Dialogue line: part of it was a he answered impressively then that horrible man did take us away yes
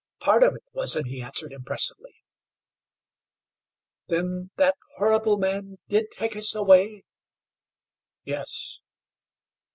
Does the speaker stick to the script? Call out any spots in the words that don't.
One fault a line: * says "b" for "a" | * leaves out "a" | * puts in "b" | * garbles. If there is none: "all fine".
all fine